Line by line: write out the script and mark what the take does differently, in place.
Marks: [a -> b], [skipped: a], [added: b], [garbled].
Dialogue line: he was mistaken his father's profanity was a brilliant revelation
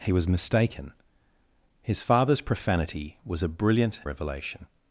he was mistaken his father's profanity was a brilliant revelation